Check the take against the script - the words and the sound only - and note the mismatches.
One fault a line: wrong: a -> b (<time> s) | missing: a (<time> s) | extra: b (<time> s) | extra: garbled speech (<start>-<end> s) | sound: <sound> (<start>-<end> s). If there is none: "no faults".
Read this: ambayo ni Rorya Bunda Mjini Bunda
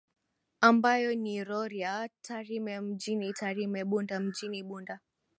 extra: Tarime Mjini Tarime (2.2 s)